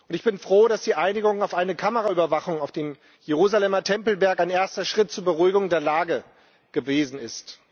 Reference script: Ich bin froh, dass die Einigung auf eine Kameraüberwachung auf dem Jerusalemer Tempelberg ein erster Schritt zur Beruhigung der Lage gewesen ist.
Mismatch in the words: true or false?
false